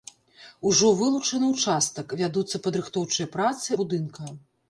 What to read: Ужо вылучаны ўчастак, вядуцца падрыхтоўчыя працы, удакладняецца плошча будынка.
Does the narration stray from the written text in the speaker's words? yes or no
yes